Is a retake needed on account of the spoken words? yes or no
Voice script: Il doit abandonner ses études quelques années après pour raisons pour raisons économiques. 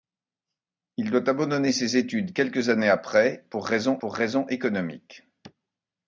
no